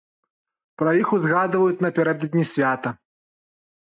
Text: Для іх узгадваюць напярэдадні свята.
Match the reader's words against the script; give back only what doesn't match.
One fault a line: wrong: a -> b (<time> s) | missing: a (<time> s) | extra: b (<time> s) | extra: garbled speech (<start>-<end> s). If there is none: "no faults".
wrong: Для -> Пра (0.8 s)